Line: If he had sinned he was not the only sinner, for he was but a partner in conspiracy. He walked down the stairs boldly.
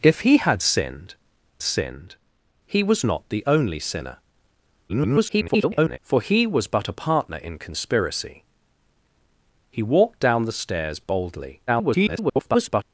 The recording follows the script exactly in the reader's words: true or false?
false